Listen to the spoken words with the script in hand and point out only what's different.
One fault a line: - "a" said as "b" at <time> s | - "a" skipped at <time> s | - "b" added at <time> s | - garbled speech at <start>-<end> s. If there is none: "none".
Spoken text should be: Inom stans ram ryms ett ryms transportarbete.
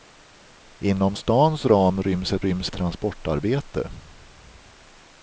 none